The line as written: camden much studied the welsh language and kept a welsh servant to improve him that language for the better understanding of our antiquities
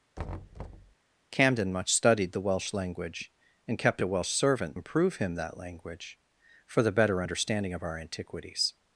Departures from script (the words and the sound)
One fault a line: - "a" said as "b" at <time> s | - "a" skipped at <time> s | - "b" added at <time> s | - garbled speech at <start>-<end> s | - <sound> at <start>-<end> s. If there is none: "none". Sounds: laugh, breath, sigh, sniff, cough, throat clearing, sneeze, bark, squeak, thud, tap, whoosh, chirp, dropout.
- thud at 0.2-0.9 s
- "to" skipped at 4.8 s